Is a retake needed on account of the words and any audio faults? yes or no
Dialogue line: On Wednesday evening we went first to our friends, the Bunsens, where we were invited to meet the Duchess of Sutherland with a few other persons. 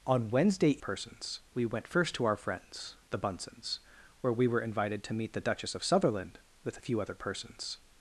yes